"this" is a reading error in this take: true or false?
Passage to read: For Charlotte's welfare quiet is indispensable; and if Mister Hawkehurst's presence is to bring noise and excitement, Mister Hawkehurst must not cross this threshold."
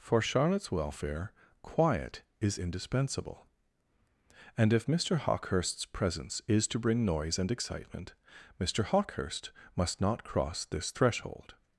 false